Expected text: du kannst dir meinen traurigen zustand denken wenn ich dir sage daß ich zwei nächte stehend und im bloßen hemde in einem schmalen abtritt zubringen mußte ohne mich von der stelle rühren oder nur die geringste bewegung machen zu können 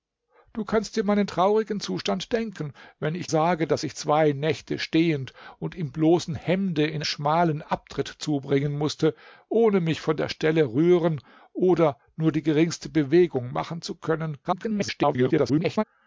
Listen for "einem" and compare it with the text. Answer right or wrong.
wrong